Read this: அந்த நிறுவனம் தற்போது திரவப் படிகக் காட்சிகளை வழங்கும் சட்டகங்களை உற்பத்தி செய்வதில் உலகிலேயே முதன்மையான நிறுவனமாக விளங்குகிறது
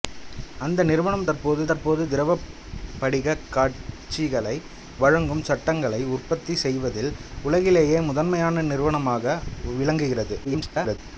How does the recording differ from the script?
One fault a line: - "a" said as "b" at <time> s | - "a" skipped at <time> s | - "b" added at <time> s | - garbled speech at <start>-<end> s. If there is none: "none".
- "தற்போது" added at 1.6 s
- garbled speech at 10.4-11.0 s